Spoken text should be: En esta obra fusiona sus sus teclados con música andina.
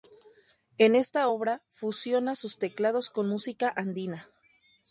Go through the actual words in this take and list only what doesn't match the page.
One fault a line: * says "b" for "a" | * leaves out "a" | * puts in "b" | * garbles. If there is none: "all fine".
* leaves out "sus"